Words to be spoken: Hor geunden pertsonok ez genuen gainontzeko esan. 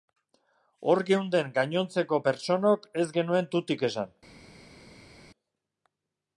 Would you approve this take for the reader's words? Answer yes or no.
no